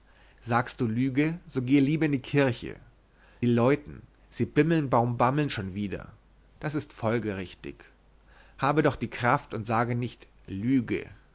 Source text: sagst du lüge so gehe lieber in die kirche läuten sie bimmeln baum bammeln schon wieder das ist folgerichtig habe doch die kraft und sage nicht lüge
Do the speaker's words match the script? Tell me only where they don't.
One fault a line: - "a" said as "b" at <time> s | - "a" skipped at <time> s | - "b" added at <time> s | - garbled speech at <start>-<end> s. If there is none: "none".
none